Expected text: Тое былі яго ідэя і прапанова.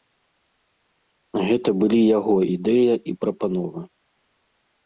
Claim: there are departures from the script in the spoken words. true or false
true